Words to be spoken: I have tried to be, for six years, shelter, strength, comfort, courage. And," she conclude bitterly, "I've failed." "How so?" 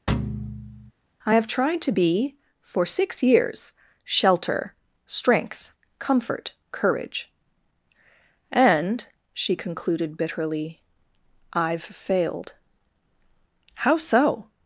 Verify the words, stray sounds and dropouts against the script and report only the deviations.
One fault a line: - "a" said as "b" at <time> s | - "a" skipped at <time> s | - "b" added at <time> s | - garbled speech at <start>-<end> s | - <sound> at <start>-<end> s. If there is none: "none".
- thud at 0.1-0.9 s
- "conclude" said as "concluded" at 9.6 s